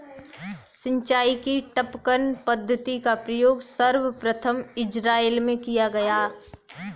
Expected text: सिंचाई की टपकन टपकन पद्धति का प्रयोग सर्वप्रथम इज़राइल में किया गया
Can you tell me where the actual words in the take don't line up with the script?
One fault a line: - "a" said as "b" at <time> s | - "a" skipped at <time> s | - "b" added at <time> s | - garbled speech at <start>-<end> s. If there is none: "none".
- "टपकन" skipped at 2.3 s